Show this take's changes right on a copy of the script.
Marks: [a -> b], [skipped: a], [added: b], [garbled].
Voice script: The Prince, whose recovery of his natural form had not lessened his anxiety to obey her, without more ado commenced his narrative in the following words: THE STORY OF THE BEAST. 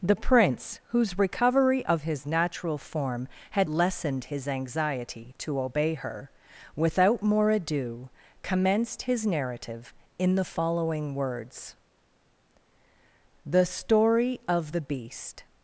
The Prince, whose recovery of his natural form had [skipped: not] lessened his anxiety to obey her, without more ado commenced his narrative in the following words: THE STORY OF THE BEAST.